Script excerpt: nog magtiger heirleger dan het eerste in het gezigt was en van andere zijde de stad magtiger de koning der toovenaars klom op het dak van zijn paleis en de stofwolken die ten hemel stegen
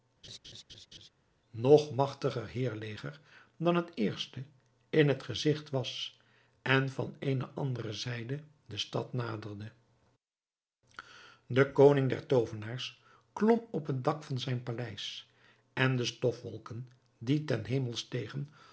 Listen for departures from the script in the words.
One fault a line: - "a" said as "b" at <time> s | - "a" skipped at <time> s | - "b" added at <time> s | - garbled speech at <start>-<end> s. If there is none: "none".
- "eene" added at 7.2 s
- "magtiger" said as "naderde" at 9.1 s